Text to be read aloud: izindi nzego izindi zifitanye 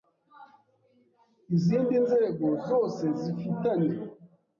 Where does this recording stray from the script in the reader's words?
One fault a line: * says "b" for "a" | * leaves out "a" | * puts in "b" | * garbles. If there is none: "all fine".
* says "zose" for "izindi"